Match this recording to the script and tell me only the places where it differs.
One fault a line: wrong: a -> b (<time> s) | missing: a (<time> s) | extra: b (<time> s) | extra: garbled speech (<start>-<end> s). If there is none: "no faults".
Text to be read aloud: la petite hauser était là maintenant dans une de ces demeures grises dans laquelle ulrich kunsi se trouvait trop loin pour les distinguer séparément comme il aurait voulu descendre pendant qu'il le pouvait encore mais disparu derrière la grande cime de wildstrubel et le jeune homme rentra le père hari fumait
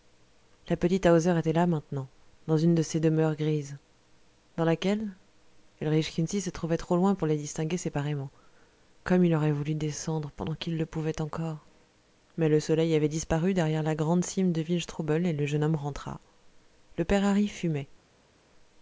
extra: le soleil avait (12.5 s)